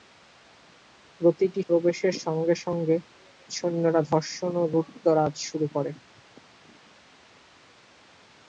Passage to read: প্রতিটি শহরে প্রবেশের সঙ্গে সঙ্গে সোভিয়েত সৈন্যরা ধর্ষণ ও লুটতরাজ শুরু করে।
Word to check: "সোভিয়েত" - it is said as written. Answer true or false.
false